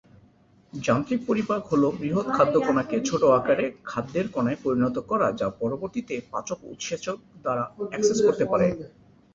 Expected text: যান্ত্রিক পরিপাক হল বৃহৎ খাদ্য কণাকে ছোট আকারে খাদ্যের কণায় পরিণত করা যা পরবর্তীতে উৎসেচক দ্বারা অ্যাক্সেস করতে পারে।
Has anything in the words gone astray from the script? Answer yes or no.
yes